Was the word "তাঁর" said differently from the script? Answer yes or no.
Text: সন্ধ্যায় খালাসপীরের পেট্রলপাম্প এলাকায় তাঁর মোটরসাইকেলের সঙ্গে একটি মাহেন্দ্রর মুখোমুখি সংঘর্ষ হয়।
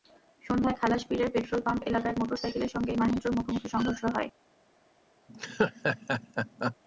yes